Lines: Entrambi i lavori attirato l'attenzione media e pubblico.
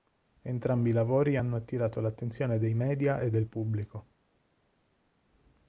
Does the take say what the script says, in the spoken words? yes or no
no